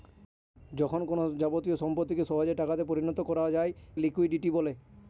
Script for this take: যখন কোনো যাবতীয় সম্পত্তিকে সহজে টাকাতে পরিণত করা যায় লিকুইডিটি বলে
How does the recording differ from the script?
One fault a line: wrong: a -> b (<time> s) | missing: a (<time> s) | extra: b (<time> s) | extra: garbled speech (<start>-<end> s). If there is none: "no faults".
no faults